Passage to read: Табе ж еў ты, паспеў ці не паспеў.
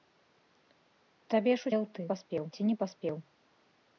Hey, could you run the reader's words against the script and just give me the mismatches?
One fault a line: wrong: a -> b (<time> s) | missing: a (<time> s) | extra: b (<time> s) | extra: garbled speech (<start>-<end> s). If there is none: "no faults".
no faults